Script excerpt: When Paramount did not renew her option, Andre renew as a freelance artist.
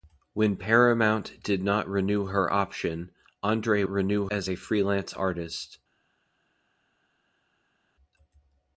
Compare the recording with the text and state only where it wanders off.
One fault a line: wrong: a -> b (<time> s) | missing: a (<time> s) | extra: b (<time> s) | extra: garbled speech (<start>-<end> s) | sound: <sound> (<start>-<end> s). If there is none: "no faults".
no faults